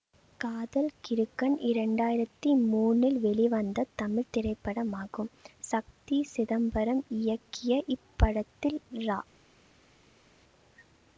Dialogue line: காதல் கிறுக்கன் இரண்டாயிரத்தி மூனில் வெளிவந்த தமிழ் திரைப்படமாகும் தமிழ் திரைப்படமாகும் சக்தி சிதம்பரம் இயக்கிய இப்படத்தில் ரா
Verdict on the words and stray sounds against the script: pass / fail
fail